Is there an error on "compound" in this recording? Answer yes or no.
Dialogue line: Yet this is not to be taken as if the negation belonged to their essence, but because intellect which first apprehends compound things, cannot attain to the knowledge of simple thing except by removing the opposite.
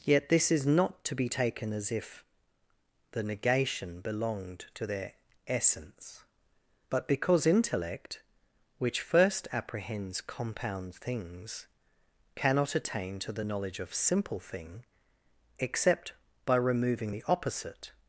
no